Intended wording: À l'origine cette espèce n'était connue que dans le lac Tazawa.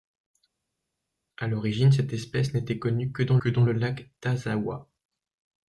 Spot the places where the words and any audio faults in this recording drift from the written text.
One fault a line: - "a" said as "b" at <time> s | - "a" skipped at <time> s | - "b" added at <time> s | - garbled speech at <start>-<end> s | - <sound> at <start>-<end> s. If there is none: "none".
- "que dans" added at 3.4 s